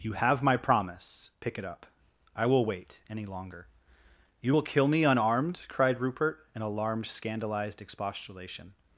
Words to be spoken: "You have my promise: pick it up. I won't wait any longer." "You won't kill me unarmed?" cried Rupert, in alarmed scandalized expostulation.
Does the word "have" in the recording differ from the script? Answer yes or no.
no